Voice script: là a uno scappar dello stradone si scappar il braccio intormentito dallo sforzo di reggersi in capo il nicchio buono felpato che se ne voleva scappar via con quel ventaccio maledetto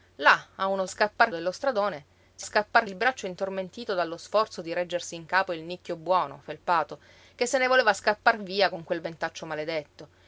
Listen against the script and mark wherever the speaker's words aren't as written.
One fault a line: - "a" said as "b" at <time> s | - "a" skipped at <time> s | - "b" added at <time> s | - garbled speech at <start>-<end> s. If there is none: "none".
none